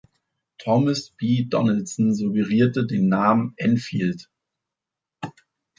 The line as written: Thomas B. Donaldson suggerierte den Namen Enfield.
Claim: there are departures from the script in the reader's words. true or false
false